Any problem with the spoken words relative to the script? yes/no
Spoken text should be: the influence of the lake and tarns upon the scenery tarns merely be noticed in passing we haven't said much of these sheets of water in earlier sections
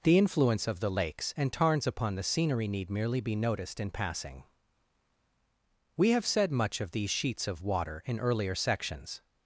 yes